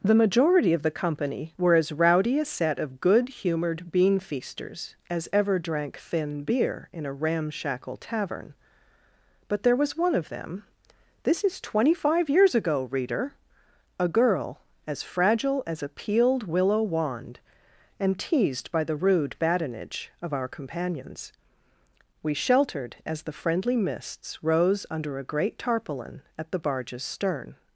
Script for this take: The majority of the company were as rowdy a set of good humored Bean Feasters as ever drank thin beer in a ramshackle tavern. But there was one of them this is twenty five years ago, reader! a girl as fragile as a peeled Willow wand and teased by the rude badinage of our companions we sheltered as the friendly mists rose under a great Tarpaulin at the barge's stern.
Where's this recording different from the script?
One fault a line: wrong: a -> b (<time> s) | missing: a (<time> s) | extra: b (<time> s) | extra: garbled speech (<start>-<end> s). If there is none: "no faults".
no faults